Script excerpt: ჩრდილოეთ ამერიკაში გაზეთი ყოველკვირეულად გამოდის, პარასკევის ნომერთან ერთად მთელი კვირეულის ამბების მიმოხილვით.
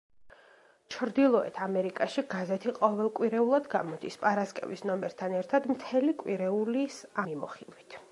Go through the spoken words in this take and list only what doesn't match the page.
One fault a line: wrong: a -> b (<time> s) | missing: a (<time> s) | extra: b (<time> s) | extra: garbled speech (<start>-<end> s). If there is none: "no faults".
missing: ამბების (7.0 s)